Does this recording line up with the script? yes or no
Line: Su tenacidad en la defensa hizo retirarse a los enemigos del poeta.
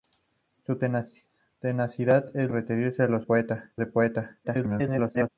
no